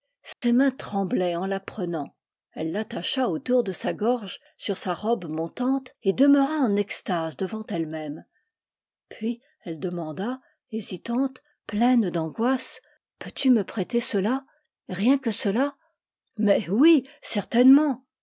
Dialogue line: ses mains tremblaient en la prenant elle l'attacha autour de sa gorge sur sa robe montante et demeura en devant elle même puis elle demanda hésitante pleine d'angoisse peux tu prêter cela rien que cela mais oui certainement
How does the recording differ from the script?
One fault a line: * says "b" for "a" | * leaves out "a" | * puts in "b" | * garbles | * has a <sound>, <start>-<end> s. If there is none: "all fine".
* has a dropout, 0.3-0.4 s
* puts in "extase"
* puts in "me"